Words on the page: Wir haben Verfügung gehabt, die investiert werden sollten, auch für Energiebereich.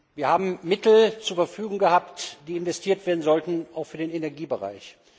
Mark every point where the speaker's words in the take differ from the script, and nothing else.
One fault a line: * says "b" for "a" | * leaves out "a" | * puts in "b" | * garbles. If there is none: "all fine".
* puts in "Mittel zur"
* puts in "den"